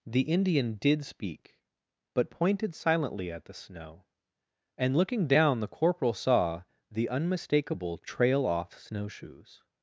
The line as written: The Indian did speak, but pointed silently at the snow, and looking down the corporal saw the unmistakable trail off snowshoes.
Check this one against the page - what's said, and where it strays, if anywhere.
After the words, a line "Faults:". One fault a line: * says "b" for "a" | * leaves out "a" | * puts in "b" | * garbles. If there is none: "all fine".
The Indian did speak, but pointed silently at the snow, and looking down the corporal saw the unmistakable trail off snowshoes.
Faults:
all fine